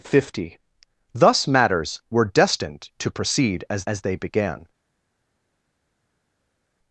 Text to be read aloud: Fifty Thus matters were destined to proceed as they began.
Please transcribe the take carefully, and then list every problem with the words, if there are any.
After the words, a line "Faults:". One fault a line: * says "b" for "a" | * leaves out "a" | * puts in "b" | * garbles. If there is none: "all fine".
Fifty Thus matters were destined to proceed as as they began.
Faults:
* puts in "as"